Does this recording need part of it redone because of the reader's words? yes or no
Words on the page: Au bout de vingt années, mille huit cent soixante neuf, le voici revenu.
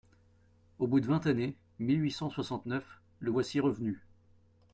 no